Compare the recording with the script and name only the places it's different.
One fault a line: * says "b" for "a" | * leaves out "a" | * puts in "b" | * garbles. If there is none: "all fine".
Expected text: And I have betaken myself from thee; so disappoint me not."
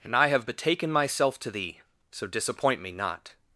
* says "to" for "from"